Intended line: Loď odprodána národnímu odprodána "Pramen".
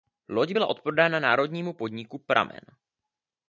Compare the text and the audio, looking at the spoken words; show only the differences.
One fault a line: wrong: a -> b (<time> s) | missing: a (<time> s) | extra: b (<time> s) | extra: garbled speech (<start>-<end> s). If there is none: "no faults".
extra: byla (0.5 s)
wrong: odprodána -> podniku (1.7 s)